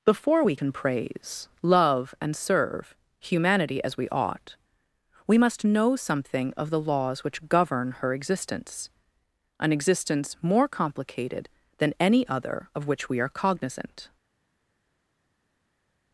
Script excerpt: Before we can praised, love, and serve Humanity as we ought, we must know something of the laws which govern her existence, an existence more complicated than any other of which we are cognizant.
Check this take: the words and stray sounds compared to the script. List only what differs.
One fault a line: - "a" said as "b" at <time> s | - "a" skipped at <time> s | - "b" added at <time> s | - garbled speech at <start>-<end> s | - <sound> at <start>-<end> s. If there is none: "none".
- "praised" said as "praise" at 0.7 s